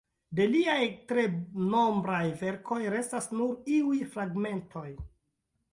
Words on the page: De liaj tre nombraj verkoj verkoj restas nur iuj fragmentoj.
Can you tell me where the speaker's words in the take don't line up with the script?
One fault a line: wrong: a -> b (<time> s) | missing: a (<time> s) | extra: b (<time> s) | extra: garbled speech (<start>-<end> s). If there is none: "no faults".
missing: verkoj (2.8 s)